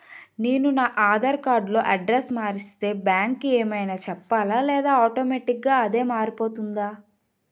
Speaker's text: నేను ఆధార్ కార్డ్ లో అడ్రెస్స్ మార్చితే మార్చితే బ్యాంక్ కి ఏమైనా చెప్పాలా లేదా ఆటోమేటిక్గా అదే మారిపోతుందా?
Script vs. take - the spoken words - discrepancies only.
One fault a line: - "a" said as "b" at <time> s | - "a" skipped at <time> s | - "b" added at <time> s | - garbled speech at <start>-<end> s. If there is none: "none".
- "నా" added at 0.7 s
- "మార్చితే" skipped at 2.9 s